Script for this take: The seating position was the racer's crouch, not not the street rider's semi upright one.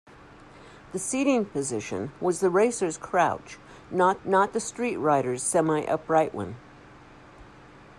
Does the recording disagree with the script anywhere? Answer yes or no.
no